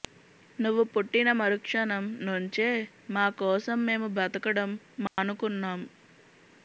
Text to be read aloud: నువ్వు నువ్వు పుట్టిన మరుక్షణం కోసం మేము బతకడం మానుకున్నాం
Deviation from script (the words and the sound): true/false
true